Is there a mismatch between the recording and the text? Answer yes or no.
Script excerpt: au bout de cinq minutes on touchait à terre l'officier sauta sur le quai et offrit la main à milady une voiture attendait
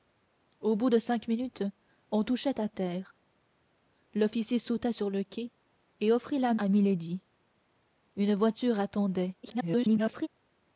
yes